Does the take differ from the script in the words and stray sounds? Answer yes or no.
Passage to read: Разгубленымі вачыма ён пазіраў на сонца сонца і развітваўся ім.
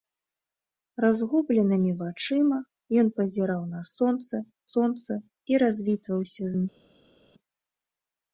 no